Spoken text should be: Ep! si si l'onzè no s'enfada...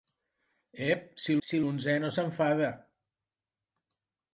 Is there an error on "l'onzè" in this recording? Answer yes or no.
no